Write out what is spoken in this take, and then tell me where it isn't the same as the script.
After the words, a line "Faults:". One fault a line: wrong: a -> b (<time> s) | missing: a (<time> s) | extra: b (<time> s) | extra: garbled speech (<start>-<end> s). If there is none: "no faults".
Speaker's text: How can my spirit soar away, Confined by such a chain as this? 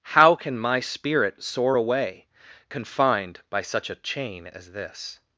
How can my spirit soar away, Confined by such a chain as this?
Faults:
no faults